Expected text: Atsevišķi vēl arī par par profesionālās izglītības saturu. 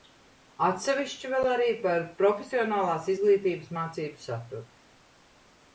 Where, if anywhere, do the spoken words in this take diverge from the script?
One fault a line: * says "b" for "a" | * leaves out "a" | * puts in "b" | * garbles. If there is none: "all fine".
* leaves out "par"
* puts in "mācību"